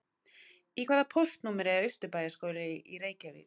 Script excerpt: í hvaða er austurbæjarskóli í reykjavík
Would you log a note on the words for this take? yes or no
yes